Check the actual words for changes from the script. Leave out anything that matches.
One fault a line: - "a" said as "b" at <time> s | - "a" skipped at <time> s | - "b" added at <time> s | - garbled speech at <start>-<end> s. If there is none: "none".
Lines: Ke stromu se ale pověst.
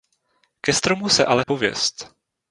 none